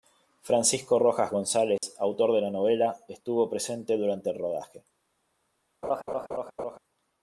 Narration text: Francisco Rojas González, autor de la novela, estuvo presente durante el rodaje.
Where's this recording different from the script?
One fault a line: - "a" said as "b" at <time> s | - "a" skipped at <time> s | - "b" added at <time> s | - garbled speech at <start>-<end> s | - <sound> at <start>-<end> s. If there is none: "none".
- dropout at 1.8-1.8 s
- laugh at 5.8-6.8 s